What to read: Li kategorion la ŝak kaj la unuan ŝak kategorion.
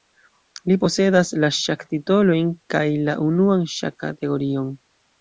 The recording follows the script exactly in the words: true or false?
false